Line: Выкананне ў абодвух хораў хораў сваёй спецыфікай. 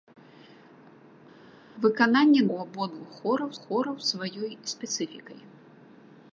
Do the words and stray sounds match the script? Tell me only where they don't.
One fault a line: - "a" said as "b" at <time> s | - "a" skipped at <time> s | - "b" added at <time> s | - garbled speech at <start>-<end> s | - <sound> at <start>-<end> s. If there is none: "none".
none